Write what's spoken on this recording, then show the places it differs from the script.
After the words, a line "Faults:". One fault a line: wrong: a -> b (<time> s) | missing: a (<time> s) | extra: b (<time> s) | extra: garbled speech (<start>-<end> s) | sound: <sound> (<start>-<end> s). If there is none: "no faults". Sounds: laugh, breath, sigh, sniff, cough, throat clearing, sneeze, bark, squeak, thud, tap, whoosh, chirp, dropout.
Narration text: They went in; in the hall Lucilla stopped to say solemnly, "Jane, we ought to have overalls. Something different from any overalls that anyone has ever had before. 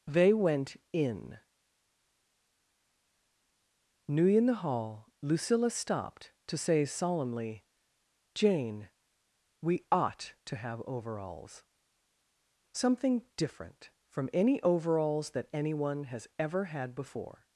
They went in; new in the hall Lucilla stopped to say solemnly, "Jane, we ought to have overalls. Something different from any overalls that anyone has ever had before.
Faults:
extra: new (4.1 s)